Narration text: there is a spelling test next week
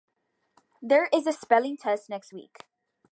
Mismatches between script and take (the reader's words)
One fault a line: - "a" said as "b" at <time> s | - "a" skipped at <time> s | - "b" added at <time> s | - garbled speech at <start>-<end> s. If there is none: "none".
none